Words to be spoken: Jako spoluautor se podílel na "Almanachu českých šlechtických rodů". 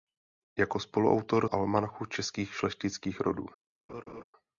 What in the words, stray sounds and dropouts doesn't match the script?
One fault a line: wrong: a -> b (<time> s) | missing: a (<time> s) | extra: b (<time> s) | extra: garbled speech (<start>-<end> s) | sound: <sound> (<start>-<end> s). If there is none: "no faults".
missing: se podílel na (1.5 s)
sound: laugh (3.9-4.2 s)